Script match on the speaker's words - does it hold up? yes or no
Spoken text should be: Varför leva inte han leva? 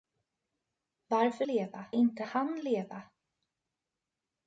yes